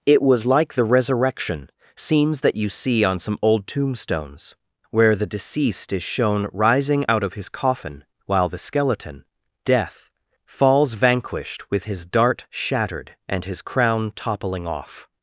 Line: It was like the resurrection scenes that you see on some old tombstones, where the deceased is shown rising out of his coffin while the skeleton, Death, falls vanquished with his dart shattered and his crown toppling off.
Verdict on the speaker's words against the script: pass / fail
pass